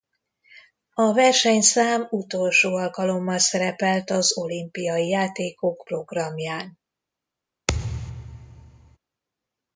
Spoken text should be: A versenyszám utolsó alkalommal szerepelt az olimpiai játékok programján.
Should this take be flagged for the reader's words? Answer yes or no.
no